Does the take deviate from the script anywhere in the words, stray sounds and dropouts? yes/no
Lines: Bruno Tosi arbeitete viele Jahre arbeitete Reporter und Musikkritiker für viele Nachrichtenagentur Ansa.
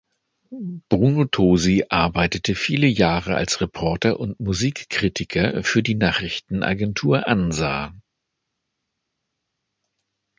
yes